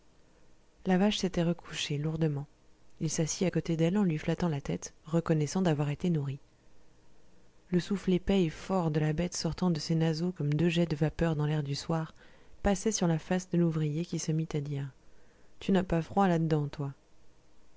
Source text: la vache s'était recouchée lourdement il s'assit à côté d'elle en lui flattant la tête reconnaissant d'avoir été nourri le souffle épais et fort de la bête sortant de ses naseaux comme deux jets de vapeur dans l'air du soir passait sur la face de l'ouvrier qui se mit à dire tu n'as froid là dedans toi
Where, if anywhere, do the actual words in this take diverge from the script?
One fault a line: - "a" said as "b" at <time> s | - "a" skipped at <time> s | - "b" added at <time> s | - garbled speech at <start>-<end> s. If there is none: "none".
- "pas" added at 15.8 s